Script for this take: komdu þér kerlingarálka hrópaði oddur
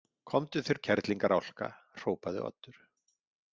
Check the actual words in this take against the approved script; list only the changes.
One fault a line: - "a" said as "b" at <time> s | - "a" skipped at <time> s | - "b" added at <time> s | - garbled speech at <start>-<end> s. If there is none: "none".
none